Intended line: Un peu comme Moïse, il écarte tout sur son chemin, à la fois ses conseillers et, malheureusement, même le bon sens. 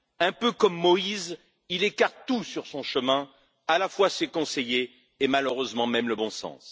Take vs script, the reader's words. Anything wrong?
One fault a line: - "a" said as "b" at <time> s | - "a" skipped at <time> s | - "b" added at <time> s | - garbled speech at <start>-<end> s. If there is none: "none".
none